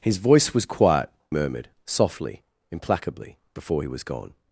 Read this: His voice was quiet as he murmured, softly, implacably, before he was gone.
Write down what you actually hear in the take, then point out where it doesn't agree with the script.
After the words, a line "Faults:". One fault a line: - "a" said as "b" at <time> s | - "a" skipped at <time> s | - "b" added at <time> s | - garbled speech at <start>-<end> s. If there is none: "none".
His voice was quiet murmured, softly, implacably, before he was gone.
Faults:
- "as he" skipped at 1.1 s